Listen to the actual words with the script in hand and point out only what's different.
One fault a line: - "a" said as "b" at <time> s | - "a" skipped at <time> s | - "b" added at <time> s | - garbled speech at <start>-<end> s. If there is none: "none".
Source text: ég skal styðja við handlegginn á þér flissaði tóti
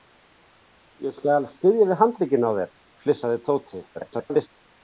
- garbled speech at 3.9-4.5 s